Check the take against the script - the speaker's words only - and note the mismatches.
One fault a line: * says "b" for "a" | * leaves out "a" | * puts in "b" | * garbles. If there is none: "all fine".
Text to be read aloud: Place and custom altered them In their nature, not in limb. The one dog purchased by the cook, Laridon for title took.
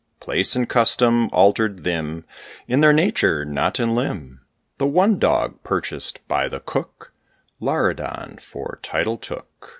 all fine